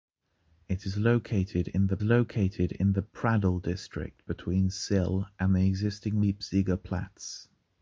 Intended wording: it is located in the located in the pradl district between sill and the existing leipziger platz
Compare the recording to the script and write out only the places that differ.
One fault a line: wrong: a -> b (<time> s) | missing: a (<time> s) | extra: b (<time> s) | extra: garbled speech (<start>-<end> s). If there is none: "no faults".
no faults